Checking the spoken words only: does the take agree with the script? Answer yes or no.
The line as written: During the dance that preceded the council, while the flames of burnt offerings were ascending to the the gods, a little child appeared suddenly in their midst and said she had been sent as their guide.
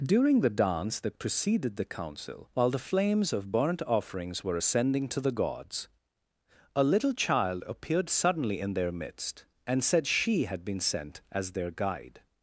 no